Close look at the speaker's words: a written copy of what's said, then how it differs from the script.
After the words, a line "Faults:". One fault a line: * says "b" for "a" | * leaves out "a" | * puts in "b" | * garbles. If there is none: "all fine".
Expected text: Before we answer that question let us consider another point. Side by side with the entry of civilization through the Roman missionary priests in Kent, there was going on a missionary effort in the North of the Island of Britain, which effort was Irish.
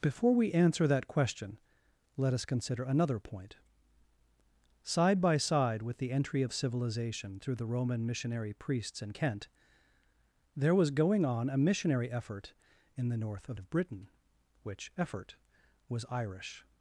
Before we answer that question let us consider another point. Side by side with the entry of civilization through the Roman missionary priests in Kent, there was going on a missionary effort in the North of of Britain, which effort was Irish.
Faults:
* leaves out "the Island"